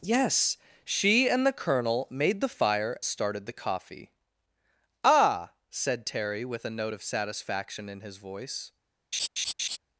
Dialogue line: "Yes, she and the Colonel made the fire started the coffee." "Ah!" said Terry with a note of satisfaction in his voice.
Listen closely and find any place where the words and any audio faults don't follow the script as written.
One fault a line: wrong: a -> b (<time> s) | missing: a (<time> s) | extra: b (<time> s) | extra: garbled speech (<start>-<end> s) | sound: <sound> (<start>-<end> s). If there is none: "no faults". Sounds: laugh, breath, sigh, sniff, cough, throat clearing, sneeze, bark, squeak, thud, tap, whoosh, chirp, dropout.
sound: laugh (9.1-9.8 s)